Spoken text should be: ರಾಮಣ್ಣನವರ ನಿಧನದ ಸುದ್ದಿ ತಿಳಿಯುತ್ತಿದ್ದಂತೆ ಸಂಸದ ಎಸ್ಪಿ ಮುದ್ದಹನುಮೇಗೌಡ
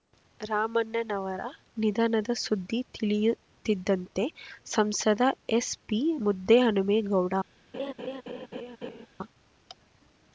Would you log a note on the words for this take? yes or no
no